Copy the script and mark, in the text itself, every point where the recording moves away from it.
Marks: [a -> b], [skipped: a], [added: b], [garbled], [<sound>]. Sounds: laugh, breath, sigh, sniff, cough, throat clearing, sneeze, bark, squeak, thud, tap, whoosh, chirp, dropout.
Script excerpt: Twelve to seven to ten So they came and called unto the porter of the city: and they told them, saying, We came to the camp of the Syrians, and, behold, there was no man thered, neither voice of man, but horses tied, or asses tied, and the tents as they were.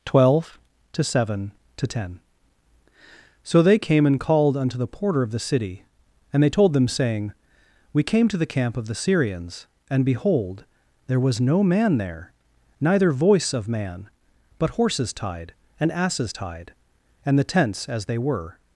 Twelve to seven to ten So they came and called unto the porter of the city: and they told them, saying, We came to the camp of the Syrians, and, behold, there was no man [thered, -> there] neither voice of man, but horses tied, [or -> and] asses tied, and the tents as they were.